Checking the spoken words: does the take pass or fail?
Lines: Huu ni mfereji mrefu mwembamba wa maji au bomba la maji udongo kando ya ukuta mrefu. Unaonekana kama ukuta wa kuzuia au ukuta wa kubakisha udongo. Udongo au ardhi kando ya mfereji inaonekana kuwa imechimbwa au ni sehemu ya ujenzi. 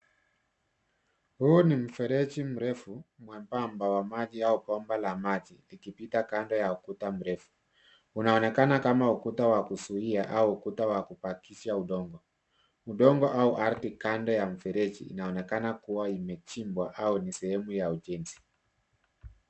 fail